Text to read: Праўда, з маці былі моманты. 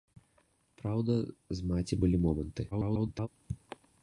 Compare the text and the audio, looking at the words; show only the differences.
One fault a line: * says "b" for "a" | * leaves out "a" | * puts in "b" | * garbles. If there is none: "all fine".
* garbles